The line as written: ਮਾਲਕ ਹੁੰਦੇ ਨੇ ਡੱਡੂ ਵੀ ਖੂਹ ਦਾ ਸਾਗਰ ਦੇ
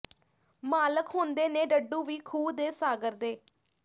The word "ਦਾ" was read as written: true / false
false